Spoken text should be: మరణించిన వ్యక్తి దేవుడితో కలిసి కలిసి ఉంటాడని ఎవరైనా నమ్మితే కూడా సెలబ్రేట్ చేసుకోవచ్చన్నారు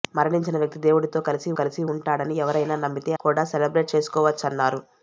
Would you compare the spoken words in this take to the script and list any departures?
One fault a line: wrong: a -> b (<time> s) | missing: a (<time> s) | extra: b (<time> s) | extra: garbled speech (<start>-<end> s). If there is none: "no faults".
no faults